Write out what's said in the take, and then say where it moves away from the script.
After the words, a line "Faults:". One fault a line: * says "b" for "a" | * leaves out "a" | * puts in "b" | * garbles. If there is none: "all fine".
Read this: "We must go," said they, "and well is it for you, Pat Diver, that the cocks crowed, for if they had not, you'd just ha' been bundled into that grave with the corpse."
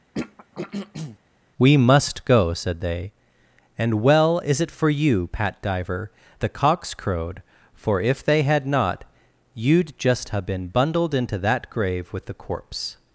"We must go," said they, "and well is it for you, Pat Diver, the cocks crowed, for if they had not, you'd just ha' been bundled into that grave with the corpse."
Faults:
* leaves out "that"